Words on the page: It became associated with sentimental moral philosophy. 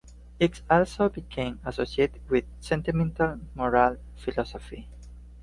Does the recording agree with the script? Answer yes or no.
no